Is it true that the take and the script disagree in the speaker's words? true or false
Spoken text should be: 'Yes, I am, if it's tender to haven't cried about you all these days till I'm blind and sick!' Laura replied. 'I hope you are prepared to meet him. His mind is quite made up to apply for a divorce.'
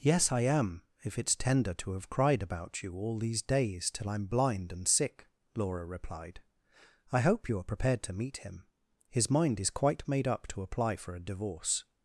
true